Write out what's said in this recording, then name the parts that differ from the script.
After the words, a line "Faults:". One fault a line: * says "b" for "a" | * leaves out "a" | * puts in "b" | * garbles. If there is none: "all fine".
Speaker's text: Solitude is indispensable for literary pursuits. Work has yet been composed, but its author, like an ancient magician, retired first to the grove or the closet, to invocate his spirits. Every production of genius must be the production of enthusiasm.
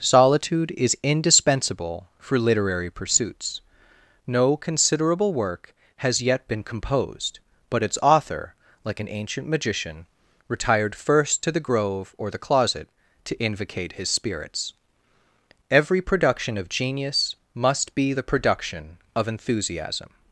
Solitude is indispensable for literary pursuits. No considerable work has yet been composed, but its author, like an ancient magician, retired first to the grove or the closet, to invocate his spirits. Every production of genius must be the production of enthusiasm.
Faults:
* puts in "No considerable"